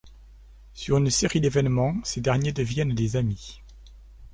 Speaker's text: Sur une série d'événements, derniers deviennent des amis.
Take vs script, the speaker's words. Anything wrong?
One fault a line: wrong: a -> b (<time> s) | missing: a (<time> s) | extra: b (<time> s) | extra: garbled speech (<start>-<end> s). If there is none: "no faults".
extra: ces (2.0 s)